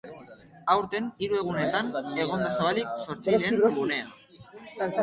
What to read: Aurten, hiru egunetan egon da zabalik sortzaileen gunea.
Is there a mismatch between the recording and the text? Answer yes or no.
no